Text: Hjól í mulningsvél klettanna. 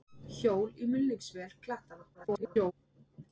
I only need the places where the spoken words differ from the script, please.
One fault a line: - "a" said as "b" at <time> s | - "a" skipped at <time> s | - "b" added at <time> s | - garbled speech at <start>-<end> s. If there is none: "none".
- garbled speech at 2.1-2.7 s